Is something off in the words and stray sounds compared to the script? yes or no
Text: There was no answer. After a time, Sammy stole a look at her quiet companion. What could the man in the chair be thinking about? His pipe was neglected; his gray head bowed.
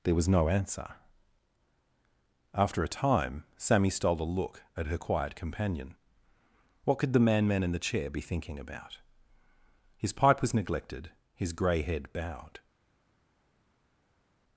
yes